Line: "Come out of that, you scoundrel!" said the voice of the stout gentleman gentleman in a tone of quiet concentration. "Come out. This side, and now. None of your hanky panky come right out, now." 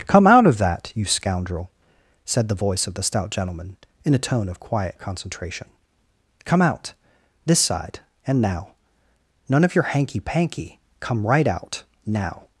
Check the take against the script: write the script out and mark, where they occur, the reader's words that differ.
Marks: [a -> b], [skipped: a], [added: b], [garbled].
"Come out of that, you scoundrel!" said the voice of the stout gentleman [skipped: gentleman] in a tone of quiet concentration. "Come out. This side, and now. None of your hanky panky come right out, now."